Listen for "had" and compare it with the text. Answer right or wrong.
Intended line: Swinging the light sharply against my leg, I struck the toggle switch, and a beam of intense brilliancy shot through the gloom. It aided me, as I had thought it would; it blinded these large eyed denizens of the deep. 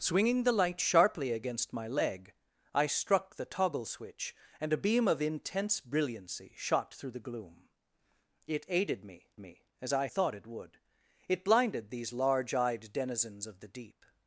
wrong